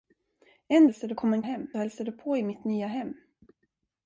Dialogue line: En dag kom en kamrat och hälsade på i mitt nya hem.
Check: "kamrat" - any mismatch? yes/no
yes